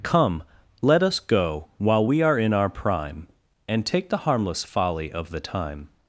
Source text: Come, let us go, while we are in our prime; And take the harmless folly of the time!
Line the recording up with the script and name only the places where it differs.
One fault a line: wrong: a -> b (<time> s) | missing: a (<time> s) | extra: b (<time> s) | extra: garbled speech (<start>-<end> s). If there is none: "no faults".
no faults